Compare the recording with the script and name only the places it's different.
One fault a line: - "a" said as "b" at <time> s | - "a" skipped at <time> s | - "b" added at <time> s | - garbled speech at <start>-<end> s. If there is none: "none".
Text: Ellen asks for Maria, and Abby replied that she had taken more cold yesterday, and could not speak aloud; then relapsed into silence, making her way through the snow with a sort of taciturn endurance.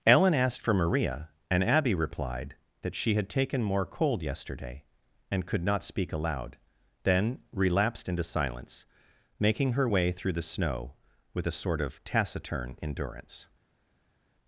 - "asks" said as "asked" at 0.3 s